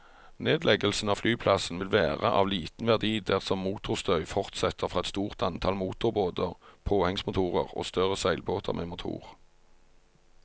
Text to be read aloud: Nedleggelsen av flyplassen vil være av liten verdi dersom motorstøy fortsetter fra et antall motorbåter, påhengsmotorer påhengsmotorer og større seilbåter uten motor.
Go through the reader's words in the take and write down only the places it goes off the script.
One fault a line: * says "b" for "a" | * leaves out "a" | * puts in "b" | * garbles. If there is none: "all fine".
* puts in "stort"
* leaves out "påhengsmotorer"
* says "med" for "uten"